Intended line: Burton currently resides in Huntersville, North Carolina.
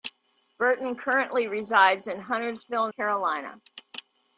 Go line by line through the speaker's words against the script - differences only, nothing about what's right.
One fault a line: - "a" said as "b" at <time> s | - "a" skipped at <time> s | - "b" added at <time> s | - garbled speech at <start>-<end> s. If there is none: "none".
- "North" skipped at 2.9 s